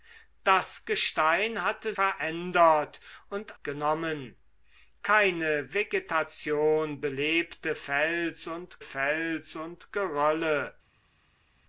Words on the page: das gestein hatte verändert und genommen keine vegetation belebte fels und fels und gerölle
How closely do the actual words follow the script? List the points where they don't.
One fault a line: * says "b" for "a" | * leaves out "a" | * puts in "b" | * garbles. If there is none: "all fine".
all fine